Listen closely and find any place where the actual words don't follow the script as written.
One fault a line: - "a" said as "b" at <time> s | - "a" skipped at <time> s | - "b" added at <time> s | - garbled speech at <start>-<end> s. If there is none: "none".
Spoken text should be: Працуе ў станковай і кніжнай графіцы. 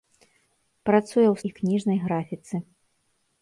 - "станковай" skipped at 1.4 s